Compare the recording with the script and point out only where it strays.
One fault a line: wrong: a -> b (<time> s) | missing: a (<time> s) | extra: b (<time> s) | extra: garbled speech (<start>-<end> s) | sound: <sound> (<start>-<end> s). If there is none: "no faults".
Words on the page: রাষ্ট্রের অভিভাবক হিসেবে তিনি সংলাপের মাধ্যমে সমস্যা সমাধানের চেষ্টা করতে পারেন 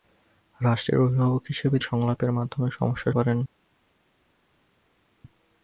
missing: তিনি (1.8 s)
missing: সমাধানের চেষ্টা করতে (3.1 s)